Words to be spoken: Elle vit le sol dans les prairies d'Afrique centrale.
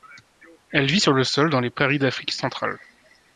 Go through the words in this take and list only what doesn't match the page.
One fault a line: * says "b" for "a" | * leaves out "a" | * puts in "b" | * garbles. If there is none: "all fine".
* puts in "sur"